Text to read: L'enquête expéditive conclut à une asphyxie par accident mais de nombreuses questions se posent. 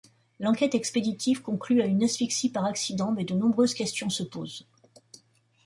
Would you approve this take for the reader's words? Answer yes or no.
yes